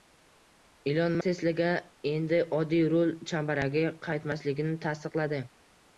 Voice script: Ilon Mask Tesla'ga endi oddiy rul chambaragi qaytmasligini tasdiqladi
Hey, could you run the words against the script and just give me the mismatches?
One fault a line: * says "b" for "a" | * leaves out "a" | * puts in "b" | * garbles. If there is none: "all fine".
* leaves out "Mask"